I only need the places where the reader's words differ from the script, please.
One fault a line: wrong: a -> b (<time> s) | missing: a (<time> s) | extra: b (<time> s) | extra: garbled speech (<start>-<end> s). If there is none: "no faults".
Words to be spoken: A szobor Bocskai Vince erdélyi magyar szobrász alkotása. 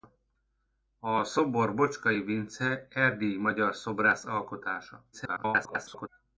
extra: garbled speech (5.1-6.1 s)